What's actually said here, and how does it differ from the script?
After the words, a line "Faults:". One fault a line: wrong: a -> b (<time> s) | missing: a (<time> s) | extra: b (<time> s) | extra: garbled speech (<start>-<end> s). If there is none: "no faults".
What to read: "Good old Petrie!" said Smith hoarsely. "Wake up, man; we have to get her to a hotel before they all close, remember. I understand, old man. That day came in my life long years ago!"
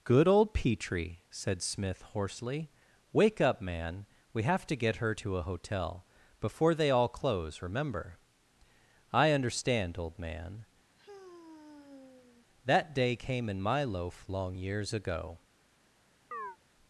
"Good old Petrie!" said Smith hoarsely. "Wake up, man; we have to get her to a hotel before they all close, remember. I understand, old man. That day came in my loaf long years ago!"
Faults:
wrong: life -> loaf (13.8 s)